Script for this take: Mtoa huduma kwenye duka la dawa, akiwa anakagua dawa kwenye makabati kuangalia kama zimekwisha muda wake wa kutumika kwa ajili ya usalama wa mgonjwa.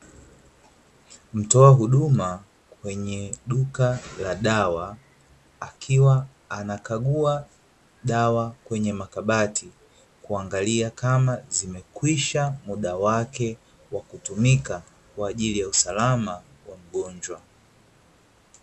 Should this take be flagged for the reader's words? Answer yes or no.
no